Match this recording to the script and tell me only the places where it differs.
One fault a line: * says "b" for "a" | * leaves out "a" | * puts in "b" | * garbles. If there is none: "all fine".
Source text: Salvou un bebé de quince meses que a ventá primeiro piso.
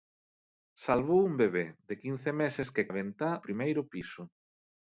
all fine